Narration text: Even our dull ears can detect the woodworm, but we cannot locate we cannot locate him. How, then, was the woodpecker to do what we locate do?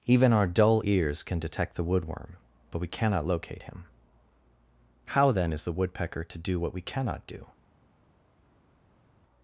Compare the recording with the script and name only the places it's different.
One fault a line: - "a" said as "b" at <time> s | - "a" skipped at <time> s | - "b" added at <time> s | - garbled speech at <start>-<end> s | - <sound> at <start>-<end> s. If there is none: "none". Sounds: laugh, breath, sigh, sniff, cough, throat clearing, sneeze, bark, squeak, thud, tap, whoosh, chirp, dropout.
- "we cannot locate" skipped at 3.6 s
- "was" said as "is" at 5.5 s
- "locate" said as "cannot" at 6.8 s